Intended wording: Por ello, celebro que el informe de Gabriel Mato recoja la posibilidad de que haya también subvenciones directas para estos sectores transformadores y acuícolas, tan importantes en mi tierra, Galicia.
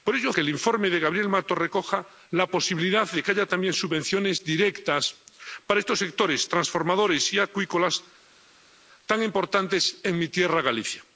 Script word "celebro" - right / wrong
wrong